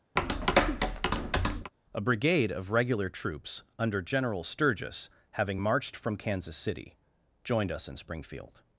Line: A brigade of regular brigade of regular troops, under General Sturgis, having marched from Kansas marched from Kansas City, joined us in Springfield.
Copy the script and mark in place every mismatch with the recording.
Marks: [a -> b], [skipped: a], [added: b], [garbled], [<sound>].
[tap] A brigade of regular [skipped: brigade of regular] troops, under General Sturgis, having marched from Kansas [skipped: marched from Kansas] City, joined us in Springfield.